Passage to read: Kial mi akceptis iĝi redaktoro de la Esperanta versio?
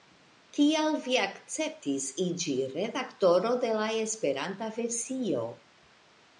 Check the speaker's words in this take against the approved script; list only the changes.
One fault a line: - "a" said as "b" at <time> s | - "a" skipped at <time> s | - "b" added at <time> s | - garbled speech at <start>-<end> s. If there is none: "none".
- "mi" said as "vi" at 1.0 s